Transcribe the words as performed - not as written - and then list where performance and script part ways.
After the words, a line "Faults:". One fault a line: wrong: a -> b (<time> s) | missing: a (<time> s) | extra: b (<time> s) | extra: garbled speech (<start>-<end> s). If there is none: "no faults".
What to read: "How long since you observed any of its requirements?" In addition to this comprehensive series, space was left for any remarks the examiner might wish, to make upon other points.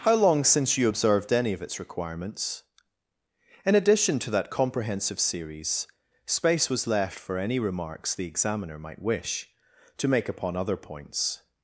"How long since you observed any of its requirements?" In addition to that comprehensive series, space was left for any remarks the examiner might wish, to make upon other points.
Faults:
wrong: this -> that (4.3 s)